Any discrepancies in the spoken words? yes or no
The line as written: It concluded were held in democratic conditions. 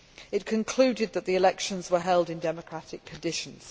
yes